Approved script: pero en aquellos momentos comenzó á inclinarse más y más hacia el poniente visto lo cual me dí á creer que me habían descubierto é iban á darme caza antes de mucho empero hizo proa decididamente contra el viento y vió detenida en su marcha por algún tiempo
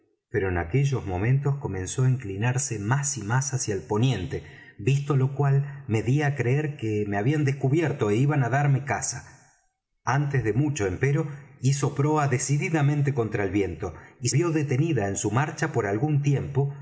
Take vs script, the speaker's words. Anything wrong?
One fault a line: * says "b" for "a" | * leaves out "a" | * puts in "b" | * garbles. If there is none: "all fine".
all fine